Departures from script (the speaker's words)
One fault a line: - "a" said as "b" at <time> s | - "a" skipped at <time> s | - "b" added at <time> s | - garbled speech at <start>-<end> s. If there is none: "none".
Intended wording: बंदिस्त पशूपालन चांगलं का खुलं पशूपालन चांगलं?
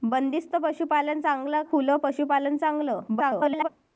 - "का" skipped at 1.6 s
- garbled speech at 3.1-3.7 s